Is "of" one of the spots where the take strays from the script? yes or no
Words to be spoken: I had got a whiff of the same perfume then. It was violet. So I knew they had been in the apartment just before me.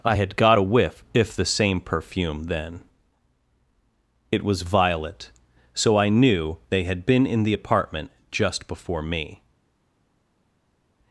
yes